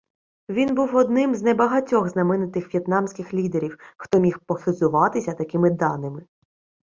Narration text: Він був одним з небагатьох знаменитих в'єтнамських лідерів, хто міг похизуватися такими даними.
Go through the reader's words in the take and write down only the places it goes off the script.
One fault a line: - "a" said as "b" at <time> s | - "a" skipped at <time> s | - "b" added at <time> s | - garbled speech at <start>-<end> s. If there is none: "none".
none